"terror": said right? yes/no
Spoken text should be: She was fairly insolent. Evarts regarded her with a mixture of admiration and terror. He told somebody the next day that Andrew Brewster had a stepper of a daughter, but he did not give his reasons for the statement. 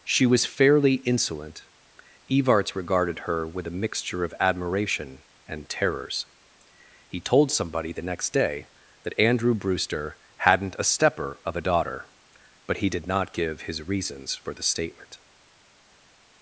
no